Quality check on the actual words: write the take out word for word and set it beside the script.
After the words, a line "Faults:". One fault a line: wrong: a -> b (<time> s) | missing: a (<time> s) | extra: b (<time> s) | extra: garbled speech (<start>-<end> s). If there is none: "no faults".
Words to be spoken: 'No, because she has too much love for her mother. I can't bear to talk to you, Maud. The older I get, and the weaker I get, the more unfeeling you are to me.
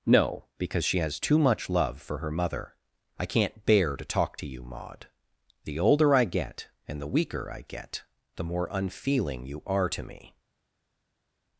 'No, because she has too much love for her mother. I can't bear to talk to you, Maud. The older I get, and the weaker I get, the more unfeeling you are to me.
Faults:
no faults